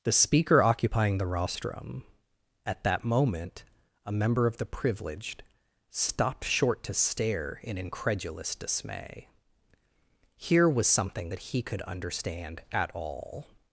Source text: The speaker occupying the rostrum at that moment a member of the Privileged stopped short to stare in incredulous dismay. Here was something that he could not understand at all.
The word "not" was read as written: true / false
false